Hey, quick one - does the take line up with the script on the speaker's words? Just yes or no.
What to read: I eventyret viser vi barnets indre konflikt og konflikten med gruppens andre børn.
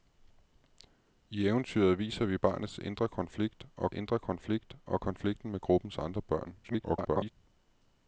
no